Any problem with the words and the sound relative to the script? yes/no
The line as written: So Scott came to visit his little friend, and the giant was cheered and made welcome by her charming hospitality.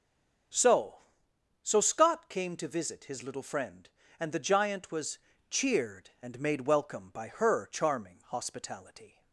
yes